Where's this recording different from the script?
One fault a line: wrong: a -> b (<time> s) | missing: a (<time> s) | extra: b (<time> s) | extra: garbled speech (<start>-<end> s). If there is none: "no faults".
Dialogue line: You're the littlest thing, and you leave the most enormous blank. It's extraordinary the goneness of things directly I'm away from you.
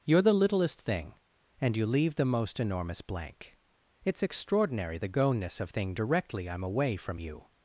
wrong: things -> thing (5.7 s)